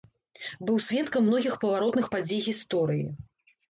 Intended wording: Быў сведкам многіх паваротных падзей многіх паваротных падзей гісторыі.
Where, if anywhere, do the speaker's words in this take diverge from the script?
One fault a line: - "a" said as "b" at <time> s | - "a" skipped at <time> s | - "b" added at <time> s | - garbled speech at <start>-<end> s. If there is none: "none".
- "многіх паваротных падзей" skipped at 2.4 s